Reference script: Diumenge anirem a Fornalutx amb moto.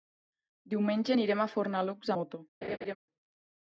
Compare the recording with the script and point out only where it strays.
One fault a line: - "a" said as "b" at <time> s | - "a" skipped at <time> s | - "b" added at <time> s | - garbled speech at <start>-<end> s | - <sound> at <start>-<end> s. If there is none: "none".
- "amb" skipped at 2.1 s
- laugh at 2.6-3.0 s